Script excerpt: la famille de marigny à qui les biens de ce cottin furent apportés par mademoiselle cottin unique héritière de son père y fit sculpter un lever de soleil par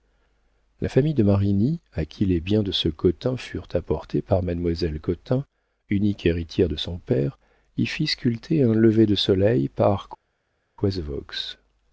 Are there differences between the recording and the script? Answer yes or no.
no